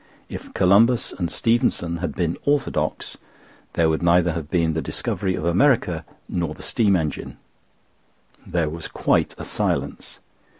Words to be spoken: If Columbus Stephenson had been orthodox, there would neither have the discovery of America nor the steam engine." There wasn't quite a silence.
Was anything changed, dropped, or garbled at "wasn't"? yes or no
yes